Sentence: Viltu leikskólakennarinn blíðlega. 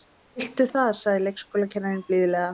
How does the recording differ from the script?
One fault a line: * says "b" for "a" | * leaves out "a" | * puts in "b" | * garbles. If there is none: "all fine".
* puts in "það sagði"